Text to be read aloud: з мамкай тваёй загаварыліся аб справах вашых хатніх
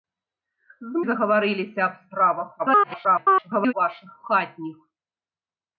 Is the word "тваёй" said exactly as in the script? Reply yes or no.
no